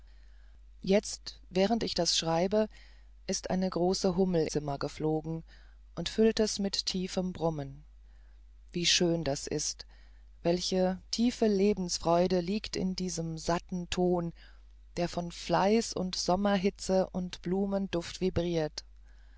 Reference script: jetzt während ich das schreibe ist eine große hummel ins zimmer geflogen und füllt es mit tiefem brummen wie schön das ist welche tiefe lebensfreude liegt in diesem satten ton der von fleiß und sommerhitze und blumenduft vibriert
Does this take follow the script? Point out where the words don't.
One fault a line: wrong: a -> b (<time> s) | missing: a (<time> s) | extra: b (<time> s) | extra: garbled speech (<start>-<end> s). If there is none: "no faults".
missing: ins (4.5 s)